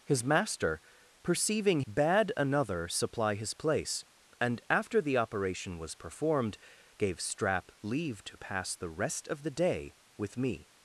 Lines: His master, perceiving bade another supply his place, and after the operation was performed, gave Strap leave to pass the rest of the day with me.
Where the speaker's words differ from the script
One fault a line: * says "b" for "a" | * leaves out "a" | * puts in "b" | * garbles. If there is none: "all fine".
all fine